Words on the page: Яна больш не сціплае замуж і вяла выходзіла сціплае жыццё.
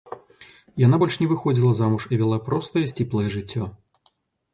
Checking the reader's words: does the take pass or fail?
fail